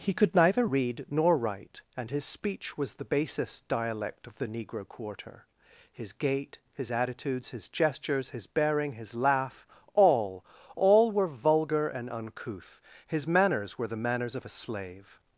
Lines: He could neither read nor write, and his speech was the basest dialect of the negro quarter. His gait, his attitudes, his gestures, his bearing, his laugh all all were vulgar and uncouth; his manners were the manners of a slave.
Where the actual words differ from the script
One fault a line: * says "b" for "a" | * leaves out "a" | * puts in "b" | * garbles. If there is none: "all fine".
all fine